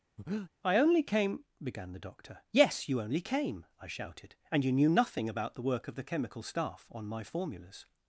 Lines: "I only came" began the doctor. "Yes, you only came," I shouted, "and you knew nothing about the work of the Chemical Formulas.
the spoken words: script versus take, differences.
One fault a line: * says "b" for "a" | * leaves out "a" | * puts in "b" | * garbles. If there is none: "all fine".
* puts in "Staff on my"